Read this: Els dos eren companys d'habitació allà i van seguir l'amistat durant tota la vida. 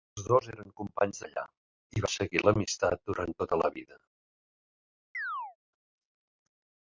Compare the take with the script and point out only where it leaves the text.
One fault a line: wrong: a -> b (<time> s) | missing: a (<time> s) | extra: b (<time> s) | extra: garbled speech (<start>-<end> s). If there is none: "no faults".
missing: d'habitació (1.2 s)
missing: van (2.0 s)